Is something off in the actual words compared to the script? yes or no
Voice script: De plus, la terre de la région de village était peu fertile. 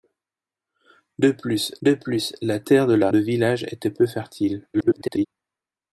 yes